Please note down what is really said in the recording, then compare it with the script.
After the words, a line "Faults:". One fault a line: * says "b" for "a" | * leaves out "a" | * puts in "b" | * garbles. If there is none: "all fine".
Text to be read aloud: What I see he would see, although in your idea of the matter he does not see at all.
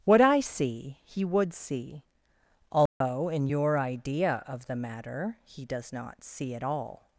What I see he would see, although in your idea of the matter he does not see at all.
Faults:
all fine